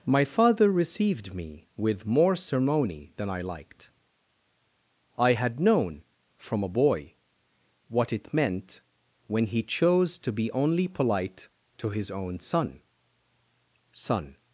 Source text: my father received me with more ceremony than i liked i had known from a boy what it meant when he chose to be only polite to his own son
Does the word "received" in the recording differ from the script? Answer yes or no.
no